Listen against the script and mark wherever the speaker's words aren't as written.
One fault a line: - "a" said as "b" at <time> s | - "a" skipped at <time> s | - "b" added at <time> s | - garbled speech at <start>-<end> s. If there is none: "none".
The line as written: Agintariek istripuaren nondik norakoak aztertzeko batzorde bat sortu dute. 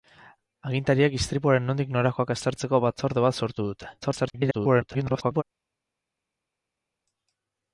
- garbled speech at 4.0-5.4 s